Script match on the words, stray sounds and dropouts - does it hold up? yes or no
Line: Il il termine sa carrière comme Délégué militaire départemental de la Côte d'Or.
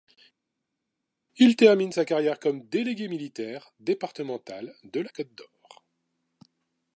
no